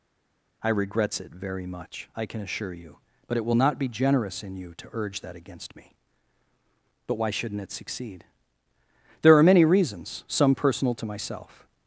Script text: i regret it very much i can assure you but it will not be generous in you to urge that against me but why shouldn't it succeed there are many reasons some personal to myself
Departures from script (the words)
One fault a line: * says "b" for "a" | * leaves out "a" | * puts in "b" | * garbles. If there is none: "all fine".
* says "regrets" for "regret"